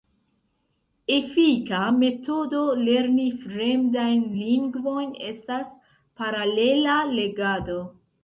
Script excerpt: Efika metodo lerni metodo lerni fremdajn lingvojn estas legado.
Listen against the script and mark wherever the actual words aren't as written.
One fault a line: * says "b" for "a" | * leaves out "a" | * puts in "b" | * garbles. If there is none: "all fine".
* leaves out "metodo lerni"
* puts in "paralela"